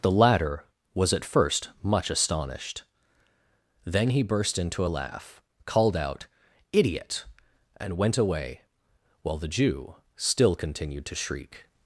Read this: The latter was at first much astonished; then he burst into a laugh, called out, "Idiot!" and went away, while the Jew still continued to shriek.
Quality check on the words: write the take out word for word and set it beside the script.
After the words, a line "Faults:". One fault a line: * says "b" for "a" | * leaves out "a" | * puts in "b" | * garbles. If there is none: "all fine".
The latter was at first much astonished; then he burst into a laugh, called out, "Idiot!" and went away, while the Jew still continued to shriek.
Faults:
all fine